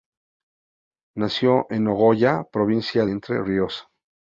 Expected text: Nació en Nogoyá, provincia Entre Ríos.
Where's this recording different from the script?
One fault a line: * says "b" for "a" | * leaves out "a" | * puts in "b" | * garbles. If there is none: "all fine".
all fine